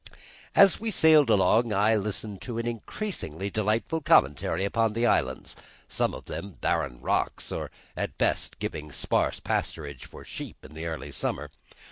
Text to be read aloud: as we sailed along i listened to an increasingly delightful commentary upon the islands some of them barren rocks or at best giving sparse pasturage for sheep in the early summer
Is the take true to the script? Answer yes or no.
yes